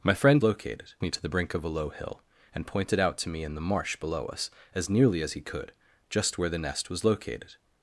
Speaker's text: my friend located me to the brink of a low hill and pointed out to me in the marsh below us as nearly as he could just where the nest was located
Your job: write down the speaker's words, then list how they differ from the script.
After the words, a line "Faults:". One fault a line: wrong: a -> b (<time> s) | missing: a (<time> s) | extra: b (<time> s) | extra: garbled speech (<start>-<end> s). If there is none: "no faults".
my friend located me to the brink of a low hill and pointed out to me in the marsh below us as nearly as he could just where the nest was located
Faults:
no faults